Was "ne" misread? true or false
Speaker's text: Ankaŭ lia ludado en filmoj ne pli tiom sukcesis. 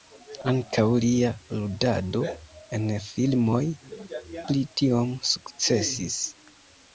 true